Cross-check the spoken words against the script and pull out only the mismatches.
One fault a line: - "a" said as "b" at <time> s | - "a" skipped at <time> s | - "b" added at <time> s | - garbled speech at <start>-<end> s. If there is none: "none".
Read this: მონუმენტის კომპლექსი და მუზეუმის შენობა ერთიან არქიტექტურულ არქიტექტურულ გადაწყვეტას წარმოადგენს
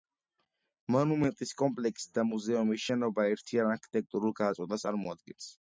- "არქიტექტურულ" skipped at 4.4 s